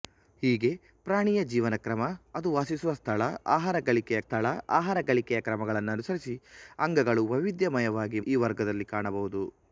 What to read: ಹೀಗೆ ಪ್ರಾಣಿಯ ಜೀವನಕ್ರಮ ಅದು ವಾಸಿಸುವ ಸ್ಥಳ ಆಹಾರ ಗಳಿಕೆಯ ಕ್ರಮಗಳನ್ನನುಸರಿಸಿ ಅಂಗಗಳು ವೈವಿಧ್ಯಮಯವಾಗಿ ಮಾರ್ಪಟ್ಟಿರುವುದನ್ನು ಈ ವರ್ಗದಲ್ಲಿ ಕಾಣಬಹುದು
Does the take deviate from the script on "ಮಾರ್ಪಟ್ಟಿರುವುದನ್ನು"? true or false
true